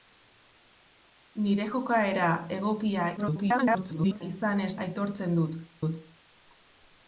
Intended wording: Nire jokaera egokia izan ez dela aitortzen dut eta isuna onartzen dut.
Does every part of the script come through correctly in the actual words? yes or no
no